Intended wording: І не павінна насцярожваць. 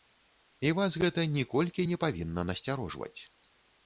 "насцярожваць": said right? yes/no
yes